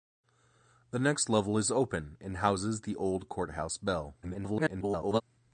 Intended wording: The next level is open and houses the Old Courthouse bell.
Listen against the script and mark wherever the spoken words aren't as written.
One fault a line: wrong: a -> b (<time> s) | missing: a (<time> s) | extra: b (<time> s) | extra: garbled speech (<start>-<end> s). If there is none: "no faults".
extra: garbled speech (4.2-5.2 s)